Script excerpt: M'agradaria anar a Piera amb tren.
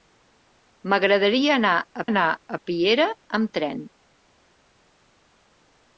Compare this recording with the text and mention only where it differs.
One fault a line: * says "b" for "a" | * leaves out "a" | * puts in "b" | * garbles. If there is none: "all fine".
* puts in "anar a"